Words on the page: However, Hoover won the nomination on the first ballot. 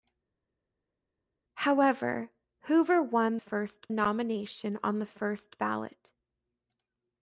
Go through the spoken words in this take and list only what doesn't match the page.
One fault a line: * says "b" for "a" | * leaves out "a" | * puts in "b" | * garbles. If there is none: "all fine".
* says "first" for "the"